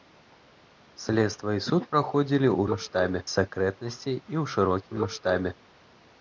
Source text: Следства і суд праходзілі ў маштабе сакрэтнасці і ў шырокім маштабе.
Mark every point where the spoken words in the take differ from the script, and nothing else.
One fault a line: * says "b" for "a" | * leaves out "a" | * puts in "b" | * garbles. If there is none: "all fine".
all fine